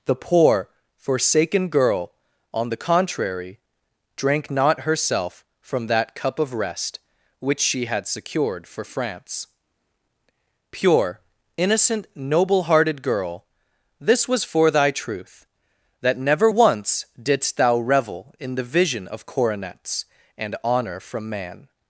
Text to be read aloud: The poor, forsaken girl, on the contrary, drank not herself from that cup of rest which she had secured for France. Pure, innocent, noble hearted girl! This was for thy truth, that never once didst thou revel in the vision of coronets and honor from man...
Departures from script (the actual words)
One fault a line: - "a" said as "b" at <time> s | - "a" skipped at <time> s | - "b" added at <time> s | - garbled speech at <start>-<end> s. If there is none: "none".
none